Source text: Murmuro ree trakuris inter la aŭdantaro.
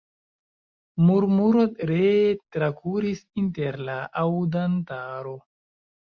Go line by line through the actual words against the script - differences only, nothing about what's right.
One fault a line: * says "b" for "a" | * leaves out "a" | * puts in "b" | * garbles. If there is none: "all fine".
all fine